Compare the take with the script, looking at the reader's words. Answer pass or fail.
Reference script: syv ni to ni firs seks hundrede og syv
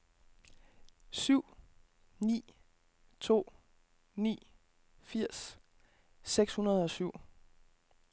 pass